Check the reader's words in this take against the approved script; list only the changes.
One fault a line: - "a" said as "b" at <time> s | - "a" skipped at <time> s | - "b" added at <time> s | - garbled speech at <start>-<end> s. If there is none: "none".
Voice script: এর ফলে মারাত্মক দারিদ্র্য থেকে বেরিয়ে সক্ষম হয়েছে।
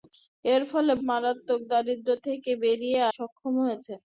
none